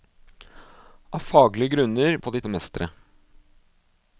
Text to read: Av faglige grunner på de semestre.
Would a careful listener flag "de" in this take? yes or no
no